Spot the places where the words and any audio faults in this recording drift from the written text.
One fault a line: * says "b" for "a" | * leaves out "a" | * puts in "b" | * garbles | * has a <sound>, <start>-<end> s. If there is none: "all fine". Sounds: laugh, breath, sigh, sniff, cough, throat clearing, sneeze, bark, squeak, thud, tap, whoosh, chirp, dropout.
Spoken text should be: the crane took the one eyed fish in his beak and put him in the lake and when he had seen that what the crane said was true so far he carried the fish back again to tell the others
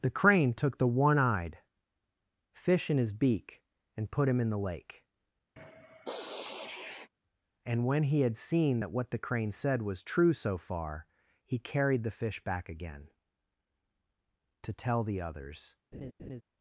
* has a sniff, 5.6-7.1 s
* has a laugh, 15.9-16.4 s